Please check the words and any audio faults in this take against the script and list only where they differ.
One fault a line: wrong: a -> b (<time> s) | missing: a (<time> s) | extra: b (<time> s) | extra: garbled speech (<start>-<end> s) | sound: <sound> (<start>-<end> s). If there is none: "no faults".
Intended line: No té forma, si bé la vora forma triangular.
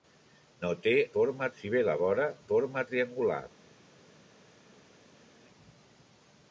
no faults